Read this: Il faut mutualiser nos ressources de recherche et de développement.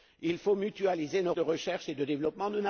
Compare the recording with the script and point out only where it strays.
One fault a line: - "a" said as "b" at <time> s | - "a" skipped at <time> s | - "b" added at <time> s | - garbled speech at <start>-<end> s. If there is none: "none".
- "ressources" skipped at 1.3 s